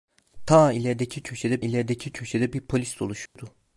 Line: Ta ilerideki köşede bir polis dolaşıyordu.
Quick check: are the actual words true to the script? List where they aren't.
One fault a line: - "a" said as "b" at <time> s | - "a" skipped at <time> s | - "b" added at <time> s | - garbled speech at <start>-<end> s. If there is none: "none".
- "ilerideki köşede" added at 1.6 s